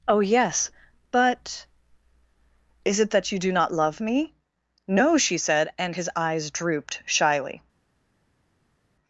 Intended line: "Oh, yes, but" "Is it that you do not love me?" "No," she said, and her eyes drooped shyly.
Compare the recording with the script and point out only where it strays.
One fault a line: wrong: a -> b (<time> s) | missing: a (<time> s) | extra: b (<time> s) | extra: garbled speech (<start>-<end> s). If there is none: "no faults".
wrong: her -> his (5.9 s)